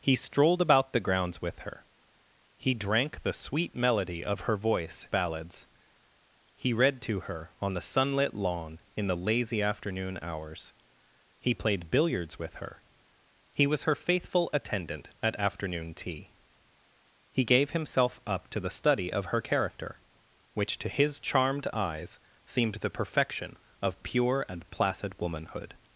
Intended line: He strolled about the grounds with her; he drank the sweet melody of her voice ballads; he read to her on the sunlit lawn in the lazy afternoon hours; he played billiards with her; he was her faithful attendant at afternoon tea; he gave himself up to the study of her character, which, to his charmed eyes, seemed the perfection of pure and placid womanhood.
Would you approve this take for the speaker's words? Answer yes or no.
yes